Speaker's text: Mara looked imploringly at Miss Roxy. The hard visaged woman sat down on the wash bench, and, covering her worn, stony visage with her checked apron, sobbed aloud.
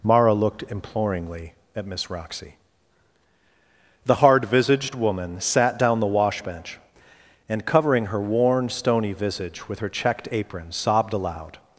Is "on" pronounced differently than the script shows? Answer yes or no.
yes